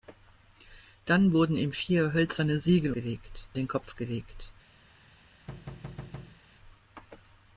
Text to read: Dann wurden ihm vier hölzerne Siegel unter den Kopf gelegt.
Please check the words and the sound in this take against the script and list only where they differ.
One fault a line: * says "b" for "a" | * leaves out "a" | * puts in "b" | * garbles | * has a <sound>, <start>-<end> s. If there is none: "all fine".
* says "gelegt" for "unter"
* has a thud, 5.5-6.4 s